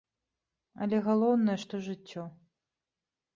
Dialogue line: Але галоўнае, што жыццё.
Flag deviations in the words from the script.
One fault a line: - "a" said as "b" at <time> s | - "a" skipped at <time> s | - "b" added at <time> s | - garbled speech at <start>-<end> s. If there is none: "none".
none